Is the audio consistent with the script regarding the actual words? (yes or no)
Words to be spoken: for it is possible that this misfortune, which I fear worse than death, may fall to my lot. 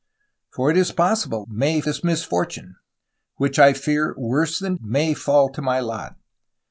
no